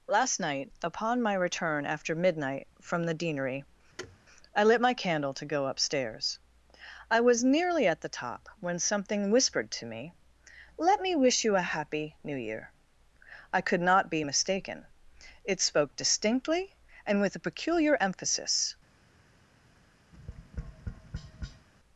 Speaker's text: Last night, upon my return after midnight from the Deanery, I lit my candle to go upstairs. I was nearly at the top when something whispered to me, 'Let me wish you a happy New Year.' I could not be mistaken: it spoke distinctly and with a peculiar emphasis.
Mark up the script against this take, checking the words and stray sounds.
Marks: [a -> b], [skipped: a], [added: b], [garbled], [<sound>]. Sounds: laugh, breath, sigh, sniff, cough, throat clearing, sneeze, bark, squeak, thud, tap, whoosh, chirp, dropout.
Last night, upon my return after midnight from the Deanery, [thud] I lit my candle to go upstairs. I was nearly at the top when something whispered to me, 'Let me wish you a happy New Year.' I could not be mistaken: it spoke distinctly and with a peculiar emphasis. [tap]